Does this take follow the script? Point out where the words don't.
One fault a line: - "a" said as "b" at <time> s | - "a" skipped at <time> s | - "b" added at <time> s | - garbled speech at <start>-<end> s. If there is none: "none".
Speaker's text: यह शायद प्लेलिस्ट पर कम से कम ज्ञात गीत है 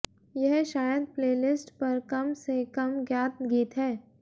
none